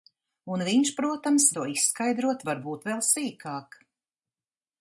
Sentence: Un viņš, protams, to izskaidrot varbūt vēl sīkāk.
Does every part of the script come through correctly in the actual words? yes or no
yes